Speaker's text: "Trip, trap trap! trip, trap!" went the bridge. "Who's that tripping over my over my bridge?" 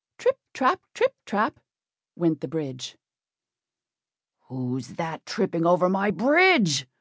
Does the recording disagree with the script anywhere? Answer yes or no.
yes